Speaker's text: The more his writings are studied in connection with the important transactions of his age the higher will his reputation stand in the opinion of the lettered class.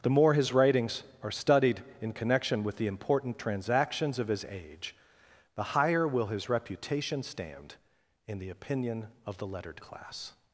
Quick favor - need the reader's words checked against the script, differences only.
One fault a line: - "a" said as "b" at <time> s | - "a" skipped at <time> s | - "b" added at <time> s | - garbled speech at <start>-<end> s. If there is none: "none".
none